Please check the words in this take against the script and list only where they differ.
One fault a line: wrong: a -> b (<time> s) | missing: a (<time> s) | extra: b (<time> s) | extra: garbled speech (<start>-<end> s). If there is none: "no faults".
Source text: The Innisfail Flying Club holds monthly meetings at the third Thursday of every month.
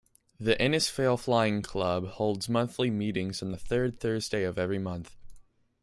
wrong: at -> on (3.4 s)